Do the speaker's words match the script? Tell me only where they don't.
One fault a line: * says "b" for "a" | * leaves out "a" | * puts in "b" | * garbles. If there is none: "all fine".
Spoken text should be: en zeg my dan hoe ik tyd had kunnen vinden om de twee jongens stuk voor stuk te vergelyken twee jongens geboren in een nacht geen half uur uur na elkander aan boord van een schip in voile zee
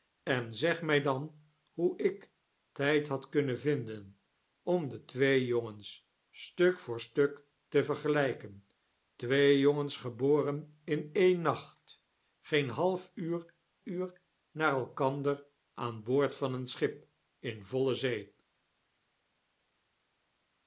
all fine